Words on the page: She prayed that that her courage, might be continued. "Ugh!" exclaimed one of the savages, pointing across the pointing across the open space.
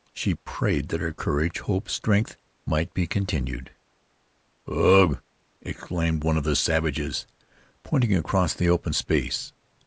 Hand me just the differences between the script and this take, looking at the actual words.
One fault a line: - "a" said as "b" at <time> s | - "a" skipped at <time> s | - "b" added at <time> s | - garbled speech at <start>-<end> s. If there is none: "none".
- "that" skipped at 1.0 s
- "hope strength" added at 1.6 s
- "pointing across the" skipped at 8.7 s